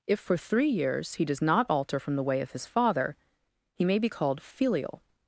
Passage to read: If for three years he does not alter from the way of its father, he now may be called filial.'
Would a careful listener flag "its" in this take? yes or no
yes